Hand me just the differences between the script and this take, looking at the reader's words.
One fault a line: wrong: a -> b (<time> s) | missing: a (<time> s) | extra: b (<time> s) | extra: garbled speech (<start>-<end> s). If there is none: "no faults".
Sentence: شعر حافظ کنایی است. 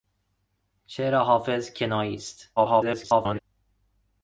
extra: garbled speech (2.6-3.4 s)